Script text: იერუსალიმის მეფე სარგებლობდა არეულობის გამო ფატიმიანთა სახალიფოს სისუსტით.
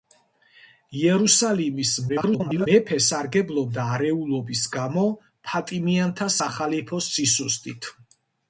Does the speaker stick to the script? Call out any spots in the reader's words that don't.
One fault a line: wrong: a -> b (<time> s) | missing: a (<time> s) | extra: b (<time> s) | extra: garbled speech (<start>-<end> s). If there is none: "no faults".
extra: garbled speech (2.1-2.7 s)